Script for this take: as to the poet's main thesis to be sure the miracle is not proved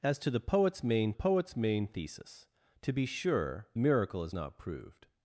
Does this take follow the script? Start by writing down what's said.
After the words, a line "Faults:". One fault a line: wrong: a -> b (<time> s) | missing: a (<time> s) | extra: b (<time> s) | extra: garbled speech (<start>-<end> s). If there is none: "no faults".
as to the poet's main poet's main thesis to be sure miracle is not proved
Faults:
extra: poet's main (1.1 s)
missing: the (3.7 s)